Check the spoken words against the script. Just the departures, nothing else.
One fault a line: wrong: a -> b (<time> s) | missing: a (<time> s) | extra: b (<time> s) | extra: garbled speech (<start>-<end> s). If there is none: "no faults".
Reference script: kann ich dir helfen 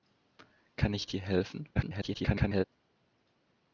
extra: garbled speech (1.7-2.6 s)